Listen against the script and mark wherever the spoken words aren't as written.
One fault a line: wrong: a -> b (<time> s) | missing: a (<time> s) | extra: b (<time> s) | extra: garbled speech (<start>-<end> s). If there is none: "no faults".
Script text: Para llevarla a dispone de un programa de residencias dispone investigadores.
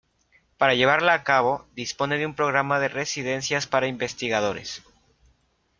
extra: cabo (1.2 s)
wrong: dispone -> para (3.6 s)